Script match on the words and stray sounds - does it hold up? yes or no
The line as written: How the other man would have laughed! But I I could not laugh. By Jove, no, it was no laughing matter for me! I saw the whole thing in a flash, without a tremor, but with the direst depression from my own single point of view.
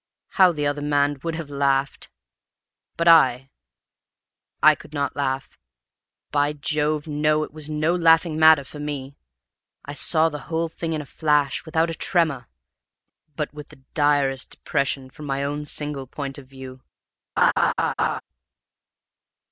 no